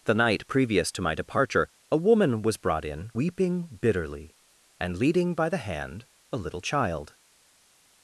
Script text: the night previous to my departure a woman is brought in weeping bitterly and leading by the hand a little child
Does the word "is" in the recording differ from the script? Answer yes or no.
yes